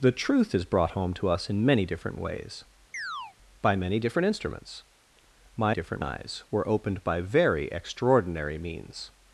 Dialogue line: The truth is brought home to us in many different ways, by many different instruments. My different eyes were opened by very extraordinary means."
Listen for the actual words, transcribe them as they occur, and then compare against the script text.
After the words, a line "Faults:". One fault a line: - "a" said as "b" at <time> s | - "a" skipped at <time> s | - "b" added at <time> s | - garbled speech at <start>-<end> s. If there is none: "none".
The truth is brought home to us in many different ways, by many different instruments. My different eyes were opened by very extraordinary means."
Faults:
none